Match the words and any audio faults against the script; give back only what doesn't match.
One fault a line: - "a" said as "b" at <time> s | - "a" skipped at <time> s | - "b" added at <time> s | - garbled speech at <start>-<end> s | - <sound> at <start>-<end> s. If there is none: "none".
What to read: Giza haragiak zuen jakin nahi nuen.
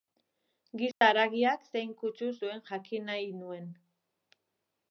- dropout at 0.9-1.0 s
- "zein kutsu" added at 1.7 s